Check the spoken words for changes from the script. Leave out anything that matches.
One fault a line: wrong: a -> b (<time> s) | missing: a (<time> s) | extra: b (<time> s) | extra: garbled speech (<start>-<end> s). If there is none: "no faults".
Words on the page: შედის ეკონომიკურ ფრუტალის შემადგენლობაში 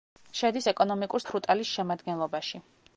no faults